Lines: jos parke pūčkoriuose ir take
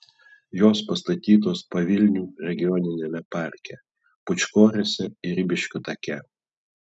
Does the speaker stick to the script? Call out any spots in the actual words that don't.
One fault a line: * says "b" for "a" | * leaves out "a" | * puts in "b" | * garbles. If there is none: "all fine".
* puts in "pastatytos pavilnių regioniniame"
* puts in "ribiškių"